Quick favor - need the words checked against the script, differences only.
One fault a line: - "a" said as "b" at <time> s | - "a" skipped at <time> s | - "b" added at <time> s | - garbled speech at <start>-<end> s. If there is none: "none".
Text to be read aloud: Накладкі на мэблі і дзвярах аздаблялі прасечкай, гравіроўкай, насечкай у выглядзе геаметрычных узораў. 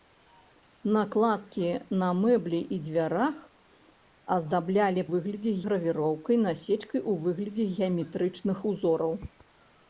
- "прасечкай" said as "выглядзе" at 5.1 s